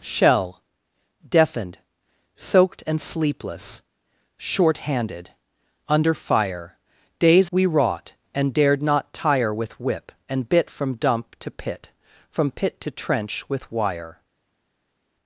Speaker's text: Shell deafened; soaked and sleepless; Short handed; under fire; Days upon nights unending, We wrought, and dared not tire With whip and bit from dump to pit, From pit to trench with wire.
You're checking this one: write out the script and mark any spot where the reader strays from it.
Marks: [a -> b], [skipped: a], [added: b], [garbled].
Shell deafened; soaked and sleepless; Short handed; under fire; Days [skipped: upon nights unending,] We wrought, and dared not tire With whip and bit from dump to pit, From pit to trench with wire.